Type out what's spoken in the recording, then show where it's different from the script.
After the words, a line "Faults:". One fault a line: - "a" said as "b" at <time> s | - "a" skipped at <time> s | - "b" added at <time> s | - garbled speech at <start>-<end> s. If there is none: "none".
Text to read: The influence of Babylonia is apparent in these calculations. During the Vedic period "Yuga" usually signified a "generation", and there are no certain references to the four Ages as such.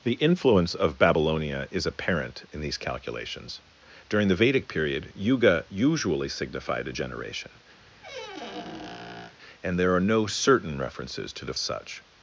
The influence of Babylonia is apparent in these calculations. During the Vedic period "Yuga" usually signified a "generation", and there are no certain references to the such.
Faults:
- "four Ages as" skipped at 11.5 s